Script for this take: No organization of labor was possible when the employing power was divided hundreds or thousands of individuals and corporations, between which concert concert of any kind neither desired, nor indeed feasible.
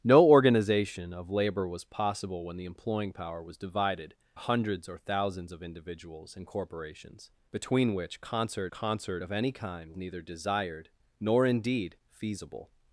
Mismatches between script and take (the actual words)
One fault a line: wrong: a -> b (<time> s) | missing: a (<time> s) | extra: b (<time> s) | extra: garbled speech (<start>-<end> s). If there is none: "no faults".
no faults